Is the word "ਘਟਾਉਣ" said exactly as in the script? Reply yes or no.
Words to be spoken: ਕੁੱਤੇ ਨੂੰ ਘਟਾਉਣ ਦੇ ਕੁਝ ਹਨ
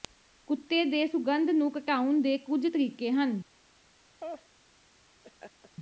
yes